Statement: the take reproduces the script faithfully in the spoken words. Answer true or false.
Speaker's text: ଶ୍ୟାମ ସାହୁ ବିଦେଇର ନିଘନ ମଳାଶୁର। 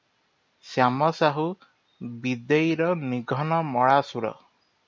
true